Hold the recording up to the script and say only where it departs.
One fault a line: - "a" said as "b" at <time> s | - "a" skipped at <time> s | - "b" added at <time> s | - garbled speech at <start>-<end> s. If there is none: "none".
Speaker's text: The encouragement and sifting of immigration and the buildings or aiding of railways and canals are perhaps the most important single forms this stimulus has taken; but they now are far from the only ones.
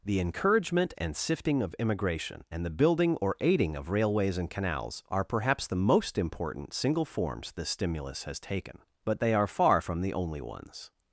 - "buildings" said as "building" at 2.7 s
- "now" skipped at 9.3 s